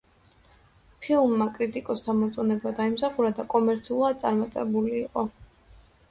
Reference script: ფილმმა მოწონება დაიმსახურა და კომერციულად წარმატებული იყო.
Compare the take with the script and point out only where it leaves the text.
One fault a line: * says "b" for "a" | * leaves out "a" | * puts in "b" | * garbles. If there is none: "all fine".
* puts in "კრიტიკოსთა"